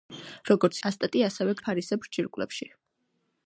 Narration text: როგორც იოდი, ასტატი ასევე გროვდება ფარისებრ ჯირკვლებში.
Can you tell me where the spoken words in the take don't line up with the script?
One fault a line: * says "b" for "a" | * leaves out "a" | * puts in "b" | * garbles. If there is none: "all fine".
* leaves out "იოდი"
* leaves out "გროვდება"